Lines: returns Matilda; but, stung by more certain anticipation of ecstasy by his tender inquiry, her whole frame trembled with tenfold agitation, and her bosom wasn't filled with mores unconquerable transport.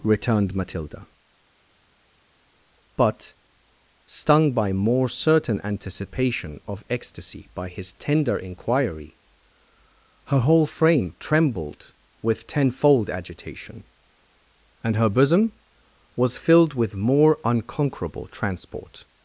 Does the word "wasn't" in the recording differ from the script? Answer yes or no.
yes